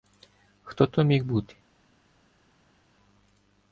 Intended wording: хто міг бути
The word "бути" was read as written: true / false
true